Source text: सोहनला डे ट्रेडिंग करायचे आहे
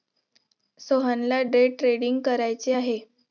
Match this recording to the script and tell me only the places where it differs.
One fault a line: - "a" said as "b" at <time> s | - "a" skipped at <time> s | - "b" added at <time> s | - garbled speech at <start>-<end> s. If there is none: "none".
none